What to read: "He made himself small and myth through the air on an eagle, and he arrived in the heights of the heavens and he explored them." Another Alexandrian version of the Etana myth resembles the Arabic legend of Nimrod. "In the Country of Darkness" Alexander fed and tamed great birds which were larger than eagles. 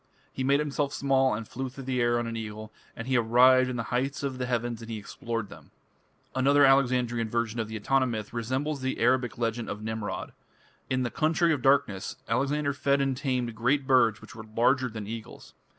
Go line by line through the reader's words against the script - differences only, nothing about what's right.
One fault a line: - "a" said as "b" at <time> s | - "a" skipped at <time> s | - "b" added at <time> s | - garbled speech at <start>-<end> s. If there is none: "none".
- "myth" said as "flew" at 1.5 s